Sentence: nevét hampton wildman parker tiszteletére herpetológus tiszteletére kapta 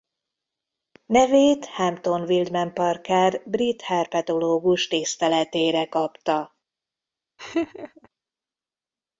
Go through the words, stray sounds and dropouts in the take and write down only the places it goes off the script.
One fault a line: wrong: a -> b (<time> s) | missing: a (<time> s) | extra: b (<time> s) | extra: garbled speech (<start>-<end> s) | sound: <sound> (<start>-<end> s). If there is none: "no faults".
wrong: tiszteletére -> brit (3.4 s)
sound: laugh (7.4-8.1 s)